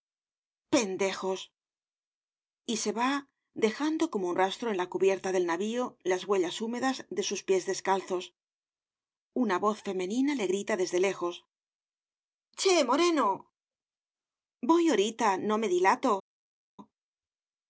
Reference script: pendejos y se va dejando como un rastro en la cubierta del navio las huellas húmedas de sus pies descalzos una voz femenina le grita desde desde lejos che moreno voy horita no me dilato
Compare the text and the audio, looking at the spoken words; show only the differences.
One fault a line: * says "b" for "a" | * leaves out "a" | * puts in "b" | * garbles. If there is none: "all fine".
* leaves out "desde"